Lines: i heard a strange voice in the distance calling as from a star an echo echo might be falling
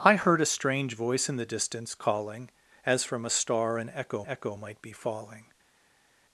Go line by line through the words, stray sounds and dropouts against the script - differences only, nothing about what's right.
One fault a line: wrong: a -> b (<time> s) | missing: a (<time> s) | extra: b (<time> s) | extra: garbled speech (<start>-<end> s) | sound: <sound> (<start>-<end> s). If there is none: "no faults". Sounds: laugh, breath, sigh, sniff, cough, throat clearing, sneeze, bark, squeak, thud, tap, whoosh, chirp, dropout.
no faults